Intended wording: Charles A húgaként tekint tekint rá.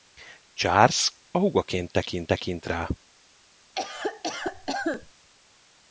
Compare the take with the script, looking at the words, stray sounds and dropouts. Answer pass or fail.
fail